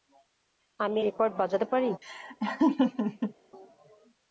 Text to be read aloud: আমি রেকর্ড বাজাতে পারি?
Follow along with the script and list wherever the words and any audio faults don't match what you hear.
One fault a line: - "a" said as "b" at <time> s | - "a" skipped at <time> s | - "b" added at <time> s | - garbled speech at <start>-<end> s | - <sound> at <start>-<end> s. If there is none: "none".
- laugh at 2.0-3.3 s